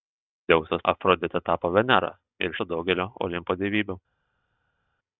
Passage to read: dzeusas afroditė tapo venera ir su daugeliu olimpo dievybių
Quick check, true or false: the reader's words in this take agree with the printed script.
true